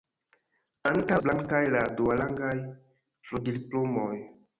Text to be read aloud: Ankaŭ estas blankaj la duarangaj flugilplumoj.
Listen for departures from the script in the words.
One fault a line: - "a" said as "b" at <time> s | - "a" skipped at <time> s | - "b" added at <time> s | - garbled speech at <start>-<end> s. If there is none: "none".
- "estas" skipped at 1.2 s